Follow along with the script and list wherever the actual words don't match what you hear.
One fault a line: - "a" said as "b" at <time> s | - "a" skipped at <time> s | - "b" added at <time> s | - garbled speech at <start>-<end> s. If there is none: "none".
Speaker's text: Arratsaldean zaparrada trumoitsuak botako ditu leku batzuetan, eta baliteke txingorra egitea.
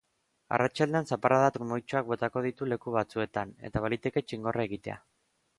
none